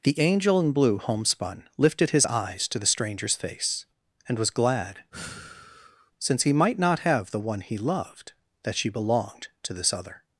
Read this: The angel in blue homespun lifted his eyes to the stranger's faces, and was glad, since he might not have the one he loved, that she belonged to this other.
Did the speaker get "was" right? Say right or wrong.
right